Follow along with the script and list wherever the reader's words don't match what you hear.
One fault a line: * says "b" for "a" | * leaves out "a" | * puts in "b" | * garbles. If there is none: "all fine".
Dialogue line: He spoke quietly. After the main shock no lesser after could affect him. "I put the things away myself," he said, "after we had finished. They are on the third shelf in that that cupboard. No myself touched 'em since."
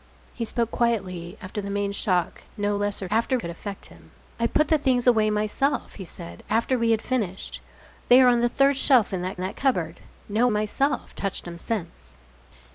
all fine